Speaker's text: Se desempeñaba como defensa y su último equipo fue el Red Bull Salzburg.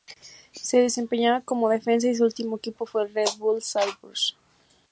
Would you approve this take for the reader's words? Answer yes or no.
yes